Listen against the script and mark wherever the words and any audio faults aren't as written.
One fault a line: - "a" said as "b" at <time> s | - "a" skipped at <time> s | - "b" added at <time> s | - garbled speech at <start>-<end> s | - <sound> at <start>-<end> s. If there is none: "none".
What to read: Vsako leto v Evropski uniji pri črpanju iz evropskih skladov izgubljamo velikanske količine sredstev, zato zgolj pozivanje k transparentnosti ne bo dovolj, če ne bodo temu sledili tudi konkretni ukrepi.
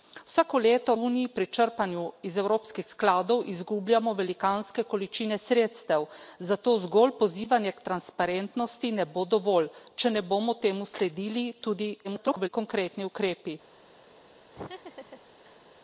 - "v Evropski" skipped at 0.9 s
- garbled speech at 12.0-12.5 s
- laugh at 14.5-15.6 s